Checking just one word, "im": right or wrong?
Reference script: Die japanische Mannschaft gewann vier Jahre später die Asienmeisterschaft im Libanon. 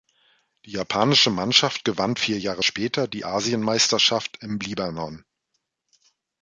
right